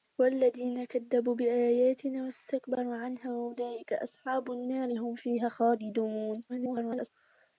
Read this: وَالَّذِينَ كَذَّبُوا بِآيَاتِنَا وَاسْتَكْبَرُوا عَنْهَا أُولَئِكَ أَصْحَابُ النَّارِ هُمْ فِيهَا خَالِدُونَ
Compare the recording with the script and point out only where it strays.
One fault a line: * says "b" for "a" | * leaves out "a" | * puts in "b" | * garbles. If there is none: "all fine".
* garbles